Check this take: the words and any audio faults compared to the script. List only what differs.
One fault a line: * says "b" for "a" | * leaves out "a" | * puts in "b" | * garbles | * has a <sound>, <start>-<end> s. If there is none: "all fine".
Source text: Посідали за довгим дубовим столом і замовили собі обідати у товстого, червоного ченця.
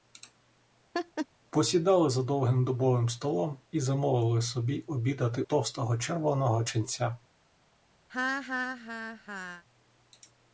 * has a laugh, 0.9-1.3 s
* leaves out "у"
* has a laugh, 8.1-9.6 s